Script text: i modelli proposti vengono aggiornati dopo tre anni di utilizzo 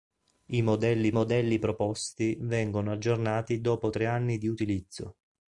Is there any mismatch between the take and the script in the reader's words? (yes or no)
yes